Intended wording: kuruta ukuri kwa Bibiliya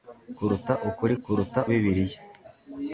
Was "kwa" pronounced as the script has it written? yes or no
no